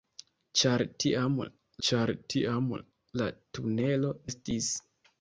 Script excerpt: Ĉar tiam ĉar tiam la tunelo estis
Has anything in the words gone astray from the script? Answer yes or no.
no